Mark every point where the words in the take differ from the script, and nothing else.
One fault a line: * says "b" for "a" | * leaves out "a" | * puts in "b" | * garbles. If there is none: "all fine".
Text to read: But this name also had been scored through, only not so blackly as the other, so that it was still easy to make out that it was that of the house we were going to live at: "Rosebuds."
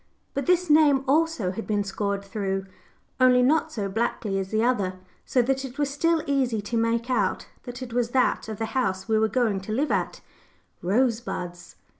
all fine